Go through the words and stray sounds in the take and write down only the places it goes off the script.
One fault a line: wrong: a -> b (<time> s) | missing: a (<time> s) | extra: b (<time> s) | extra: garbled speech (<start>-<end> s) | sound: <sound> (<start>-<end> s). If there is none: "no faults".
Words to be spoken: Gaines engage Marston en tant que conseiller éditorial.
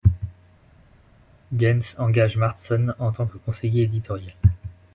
no faults